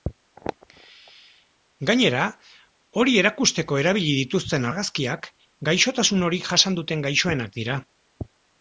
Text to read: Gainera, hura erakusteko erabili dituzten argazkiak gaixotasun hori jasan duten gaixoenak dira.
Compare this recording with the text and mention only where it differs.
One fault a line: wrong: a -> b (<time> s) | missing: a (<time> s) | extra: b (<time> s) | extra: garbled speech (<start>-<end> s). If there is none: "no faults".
wrong: hura -> hori (3.0 s)